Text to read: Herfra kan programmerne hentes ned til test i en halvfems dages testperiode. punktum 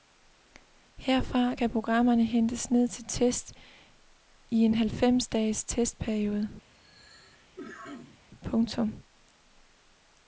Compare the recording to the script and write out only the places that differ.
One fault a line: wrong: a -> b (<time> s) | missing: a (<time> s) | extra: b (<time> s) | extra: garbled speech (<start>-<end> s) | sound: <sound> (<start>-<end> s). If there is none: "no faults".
sound: cough (6.7-8.2 s)